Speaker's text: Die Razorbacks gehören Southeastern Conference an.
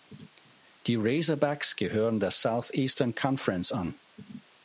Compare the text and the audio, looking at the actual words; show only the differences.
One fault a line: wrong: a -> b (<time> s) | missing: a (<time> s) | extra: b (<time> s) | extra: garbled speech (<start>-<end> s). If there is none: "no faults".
extra: der (2.2 s)